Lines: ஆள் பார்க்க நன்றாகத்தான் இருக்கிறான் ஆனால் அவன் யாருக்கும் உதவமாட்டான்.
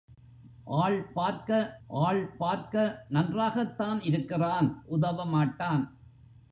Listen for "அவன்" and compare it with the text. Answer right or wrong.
wrong